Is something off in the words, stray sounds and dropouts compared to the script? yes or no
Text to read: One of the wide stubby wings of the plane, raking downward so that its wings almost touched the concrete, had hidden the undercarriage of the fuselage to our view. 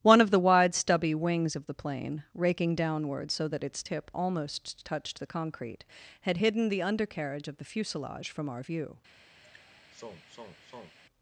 yes